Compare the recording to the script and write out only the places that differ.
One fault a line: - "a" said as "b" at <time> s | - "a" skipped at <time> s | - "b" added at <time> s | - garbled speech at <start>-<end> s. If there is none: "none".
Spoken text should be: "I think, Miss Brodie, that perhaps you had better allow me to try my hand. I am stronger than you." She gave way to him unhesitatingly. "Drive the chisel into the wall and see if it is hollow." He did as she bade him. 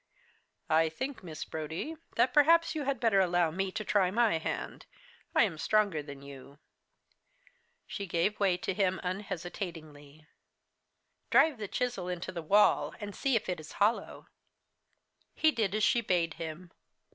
none